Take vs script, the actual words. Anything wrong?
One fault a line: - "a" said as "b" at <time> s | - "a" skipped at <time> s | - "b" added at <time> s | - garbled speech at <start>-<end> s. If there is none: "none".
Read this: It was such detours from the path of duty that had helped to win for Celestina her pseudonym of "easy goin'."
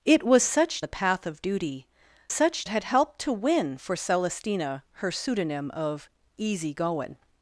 - "detours from" skipped at 0.8 s
- "that" said as "such" at 2.3 s